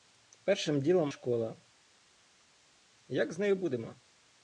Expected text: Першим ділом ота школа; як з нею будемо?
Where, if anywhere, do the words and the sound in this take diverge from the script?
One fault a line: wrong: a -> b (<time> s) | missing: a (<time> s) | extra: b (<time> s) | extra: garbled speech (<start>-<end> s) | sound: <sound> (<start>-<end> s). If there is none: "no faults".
missing: ота (1.1 s)